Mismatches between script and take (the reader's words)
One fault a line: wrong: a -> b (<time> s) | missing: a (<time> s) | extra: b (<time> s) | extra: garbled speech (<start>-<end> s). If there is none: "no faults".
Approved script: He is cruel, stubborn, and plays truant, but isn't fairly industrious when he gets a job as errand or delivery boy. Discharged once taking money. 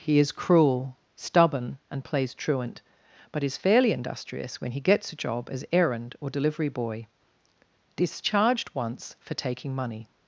wrong: isn't -> is (3.4 s)
extra: for (9.2 s)